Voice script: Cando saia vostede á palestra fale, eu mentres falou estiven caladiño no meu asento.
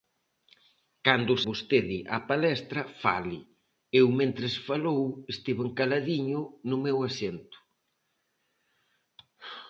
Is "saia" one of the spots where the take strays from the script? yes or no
yes